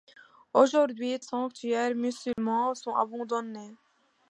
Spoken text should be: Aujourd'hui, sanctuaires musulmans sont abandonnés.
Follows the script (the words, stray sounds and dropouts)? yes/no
no